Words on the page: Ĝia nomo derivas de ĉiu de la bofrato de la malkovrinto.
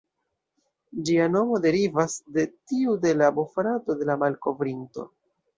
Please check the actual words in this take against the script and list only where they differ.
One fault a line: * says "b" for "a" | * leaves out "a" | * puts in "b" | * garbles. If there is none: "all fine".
* says "tiu" for "ĉiu"